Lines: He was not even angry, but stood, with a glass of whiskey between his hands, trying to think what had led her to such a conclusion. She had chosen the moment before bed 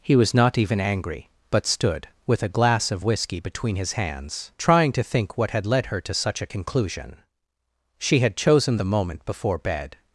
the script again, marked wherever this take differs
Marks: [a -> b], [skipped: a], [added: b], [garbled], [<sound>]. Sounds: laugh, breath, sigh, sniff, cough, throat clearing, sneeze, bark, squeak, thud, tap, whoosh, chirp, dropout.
He was not even angry, but stood, with a glass of whiskey between his hands, trying to think what had led her to such a conclusion. She had chosen the moment before bed